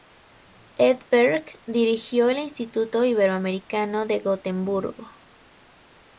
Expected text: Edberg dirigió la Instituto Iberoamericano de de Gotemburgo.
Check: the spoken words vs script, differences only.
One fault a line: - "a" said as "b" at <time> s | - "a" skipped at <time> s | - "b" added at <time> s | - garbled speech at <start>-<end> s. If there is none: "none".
- "la" said as "el" at 2.3 s
- "de" skipped at 4.2 s